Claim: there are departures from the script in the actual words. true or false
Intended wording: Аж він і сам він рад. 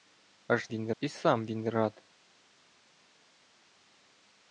false